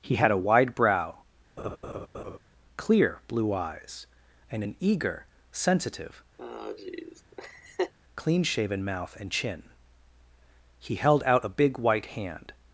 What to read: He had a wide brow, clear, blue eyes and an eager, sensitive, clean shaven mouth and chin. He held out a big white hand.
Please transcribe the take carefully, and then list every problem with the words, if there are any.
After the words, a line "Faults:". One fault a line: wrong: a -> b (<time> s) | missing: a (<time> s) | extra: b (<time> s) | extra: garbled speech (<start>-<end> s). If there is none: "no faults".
He had a wide brow, clear, blue eyes and an eager, sensitive, clean shaven mouth and chin. He held out a big white hand.
Faults:
no faults